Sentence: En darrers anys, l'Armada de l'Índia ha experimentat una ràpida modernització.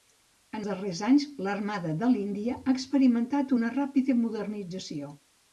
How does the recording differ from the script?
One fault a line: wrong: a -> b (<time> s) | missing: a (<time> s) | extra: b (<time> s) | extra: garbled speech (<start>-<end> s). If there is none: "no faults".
no faults